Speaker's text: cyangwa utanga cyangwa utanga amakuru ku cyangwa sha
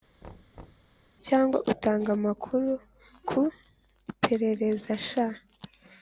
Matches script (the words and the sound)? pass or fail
fail